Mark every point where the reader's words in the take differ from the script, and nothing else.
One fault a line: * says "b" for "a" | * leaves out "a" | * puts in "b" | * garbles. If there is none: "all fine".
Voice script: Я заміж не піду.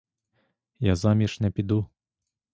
all fine